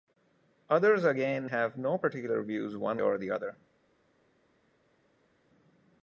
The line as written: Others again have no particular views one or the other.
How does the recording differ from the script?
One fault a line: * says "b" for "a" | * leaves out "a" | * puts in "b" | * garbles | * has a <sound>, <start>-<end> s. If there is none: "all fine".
all fine